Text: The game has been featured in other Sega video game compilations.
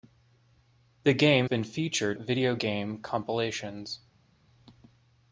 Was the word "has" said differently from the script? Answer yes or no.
yes